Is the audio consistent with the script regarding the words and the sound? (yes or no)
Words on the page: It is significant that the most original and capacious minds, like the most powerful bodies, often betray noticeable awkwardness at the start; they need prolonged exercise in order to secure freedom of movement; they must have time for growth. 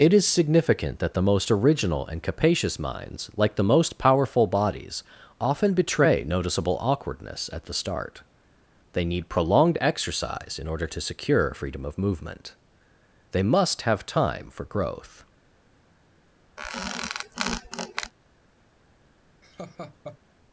no